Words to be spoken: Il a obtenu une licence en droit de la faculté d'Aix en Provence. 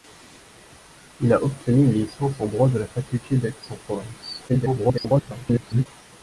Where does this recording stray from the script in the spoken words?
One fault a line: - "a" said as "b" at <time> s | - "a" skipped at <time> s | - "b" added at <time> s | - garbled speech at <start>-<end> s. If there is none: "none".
- garbled speech at 4.5-5.9 s